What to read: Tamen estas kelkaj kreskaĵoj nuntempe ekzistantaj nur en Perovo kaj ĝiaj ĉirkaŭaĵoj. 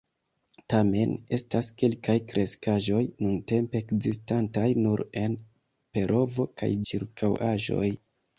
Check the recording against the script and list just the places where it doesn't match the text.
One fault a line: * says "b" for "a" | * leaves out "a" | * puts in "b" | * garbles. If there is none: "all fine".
* leaves out "ĝiaj"